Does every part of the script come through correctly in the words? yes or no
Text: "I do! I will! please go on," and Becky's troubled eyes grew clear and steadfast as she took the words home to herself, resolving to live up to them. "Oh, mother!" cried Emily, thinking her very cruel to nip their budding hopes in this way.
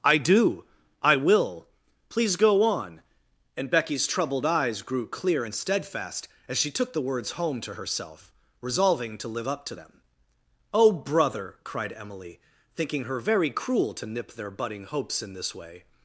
no